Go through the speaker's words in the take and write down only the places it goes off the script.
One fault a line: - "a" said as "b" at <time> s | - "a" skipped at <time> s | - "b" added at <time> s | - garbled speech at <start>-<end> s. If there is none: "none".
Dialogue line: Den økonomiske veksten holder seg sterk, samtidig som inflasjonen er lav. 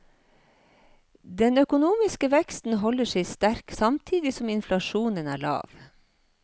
none